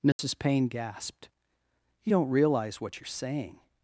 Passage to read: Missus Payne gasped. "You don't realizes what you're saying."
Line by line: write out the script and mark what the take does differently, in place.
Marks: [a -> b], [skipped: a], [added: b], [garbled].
Missus Payne gasped. "You don't [realizes -> realize] what you're saying."